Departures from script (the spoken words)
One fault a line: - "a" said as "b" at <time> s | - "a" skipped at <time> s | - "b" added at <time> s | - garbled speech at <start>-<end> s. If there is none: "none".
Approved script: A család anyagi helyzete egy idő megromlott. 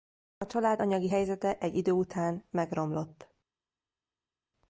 - "után" added at 1.9 s